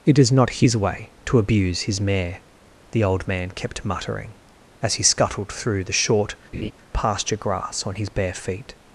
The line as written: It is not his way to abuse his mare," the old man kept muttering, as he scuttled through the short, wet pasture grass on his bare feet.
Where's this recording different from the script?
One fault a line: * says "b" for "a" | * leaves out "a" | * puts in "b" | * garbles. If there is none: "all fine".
* leaves out "wet"